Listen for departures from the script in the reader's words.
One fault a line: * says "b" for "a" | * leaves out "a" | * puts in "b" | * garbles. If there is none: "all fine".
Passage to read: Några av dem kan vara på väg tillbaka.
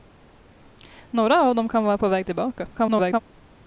* garbles